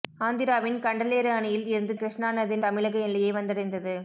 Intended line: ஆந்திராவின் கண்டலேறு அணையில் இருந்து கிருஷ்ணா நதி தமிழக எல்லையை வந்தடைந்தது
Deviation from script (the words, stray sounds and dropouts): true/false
false